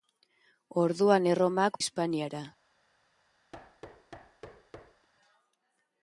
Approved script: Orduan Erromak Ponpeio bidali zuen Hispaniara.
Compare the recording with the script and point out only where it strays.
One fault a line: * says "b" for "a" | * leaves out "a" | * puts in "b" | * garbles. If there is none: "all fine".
* leaves out "Ponpeio bidali zuen"